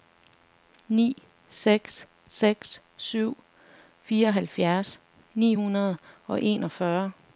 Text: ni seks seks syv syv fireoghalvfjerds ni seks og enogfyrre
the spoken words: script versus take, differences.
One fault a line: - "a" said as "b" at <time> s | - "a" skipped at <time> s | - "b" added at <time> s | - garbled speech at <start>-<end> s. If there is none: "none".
- "syv" skipped at 3.4 s
- "seks" said as "hundrede" at 5.5 s